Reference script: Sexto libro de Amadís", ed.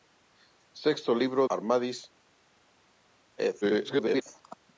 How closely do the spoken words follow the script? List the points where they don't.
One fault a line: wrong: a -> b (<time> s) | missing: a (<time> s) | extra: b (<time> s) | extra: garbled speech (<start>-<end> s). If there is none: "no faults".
missing: de (1.5 s)
extra: garbled speech (3.6-4.2 s)